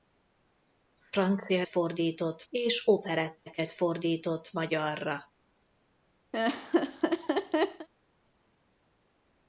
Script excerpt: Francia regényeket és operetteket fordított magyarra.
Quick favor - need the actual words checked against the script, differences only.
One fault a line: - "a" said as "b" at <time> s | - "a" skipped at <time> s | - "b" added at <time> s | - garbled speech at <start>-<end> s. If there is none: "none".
- "regényeket" said as "fordított" at 1.7 s